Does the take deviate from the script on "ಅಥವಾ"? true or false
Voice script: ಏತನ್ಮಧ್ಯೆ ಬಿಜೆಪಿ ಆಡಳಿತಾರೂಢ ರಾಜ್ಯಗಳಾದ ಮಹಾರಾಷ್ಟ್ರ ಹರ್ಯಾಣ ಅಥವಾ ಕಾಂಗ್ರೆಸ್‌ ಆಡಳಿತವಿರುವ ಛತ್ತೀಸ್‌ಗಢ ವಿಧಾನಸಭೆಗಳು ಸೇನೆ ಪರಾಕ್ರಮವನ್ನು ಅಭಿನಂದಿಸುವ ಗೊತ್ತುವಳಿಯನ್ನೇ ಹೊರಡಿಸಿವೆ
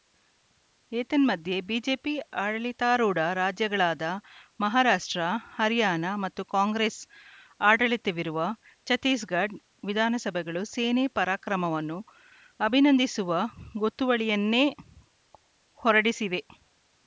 true